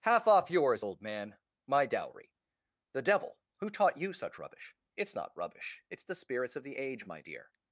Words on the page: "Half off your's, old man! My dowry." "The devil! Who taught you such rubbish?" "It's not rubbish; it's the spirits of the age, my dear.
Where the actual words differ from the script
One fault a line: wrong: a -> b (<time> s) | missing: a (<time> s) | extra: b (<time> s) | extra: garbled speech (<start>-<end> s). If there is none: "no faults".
no faults